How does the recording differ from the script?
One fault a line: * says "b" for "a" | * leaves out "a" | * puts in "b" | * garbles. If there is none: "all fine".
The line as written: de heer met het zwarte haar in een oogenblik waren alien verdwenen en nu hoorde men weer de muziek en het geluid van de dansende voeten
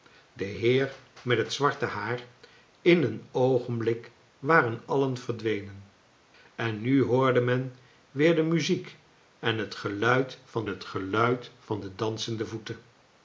* puts in "het geluid van"